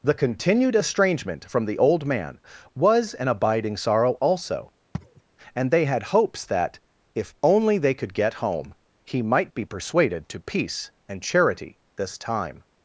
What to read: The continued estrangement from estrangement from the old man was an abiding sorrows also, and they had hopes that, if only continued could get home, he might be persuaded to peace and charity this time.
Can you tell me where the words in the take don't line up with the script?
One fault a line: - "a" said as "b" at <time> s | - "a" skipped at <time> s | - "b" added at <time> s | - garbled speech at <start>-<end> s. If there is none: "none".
- "estrangement from" skipped at 1.7 s
- "sorrows" said as "sorrow" at 3.8 s
- "continued" said as "they" at 7.8 s